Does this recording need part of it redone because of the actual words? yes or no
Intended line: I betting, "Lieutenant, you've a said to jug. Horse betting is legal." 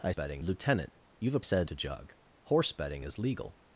no